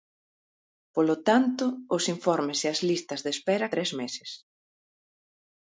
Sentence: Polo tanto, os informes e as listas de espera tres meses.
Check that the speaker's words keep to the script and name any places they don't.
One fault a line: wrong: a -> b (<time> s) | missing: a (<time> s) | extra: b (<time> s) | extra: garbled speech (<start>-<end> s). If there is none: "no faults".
no faults